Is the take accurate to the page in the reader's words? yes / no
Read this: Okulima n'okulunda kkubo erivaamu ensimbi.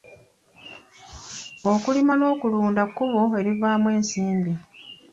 yes